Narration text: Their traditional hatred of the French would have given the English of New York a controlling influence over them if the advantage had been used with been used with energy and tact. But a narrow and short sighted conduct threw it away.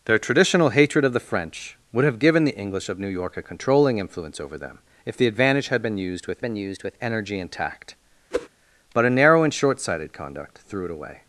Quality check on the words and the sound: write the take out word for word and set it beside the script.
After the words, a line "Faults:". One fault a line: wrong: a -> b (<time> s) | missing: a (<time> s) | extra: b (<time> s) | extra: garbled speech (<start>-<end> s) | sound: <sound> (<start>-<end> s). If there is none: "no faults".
Their traditional hatred of the French would have given the English of New York a controlling influence over them if the advantage had been used with been used with energy and tact. But a narrow and short sighted conduct threw it away.
Faults:
sound: whoosh (8.3-8.5 s)